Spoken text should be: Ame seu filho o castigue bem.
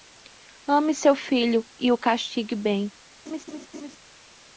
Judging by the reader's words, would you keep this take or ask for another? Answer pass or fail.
fail